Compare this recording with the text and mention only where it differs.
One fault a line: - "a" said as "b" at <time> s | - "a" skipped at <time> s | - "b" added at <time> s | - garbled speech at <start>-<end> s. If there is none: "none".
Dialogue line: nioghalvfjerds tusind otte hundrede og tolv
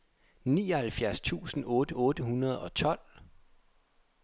- "otte" added at 1.9 s